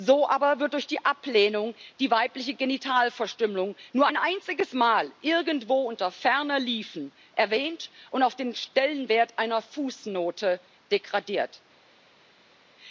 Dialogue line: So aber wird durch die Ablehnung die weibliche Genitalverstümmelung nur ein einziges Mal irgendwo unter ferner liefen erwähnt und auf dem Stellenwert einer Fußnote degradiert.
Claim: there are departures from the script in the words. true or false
true